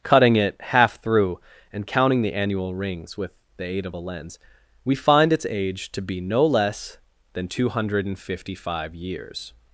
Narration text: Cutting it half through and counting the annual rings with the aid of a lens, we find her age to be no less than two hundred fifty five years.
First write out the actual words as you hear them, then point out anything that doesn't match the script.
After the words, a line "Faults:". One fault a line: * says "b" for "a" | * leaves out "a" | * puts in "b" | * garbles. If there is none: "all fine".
Cutting it half through and counting the annual rings with the aid of a lens, we find its age to be no less than two hundred fifty five years.
Faults:
* says "its" for "her"